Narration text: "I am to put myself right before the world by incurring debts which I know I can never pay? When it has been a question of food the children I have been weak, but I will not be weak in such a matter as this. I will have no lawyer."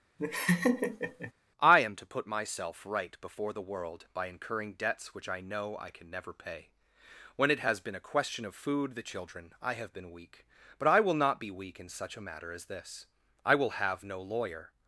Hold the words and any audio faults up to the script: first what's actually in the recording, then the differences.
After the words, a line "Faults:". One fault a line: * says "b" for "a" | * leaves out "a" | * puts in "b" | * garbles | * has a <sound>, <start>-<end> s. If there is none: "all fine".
"I am to put myself right before the world by incurring debts which I know I can never pay? When it has been a question of food the children I have been weak, but I will not be weak in such a matter as this. I will have no lawyer."
Faults:
* has a laugh, 0.2-1.3 s